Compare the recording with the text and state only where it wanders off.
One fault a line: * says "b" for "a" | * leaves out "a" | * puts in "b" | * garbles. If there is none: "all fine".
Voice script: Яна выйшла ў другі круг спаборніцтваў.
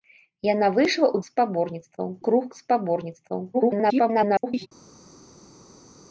* says "спаборніцтваў" for "другі"
* garbles